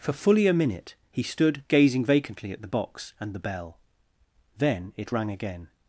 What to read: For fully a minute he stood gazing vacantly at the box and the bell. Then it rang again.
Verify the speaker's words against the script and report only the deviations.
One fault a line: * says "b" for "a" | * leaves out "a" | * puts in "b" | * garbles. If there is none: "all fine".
all fine